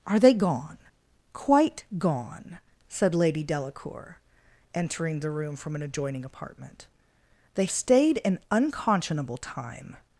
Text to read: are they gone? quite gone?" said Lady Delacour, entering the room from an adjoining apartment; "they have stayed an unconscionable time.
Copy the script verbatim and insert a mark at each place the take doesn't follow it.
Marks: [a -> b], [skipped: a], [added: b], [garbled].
are they gone? quite gone?" said Lady Delacour, entering the room from an adjoining apartment; "they [skipped: have] stayed an unconscionable time.